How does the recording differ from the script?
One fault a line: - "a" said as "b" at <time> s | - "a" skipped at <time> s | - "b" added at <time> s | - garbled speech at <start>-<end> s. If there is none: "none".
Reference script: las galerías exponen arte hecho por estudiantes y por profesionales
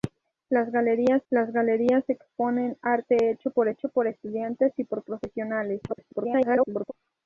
- "las galerías" added at 1.3 s
- "hecho por" added at 3.7 s
- garbled speech at 5.9-6.9 s